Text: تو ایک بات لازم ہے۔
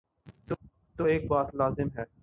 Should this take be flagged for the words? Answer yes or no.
no